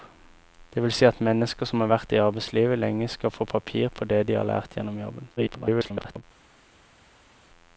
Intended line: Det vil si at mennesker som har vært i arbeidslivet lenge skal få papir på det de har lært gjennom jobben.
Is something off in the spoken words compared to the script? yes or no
yes